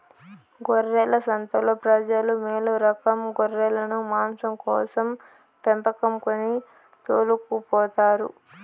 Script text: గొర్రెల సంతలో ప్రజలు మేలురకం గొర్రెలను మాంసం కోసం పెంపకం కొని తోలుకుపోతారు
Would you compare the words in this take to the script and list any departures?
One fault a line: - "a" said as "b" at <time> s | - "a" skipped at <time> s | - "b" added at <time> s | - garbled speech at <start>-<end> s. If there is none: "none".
none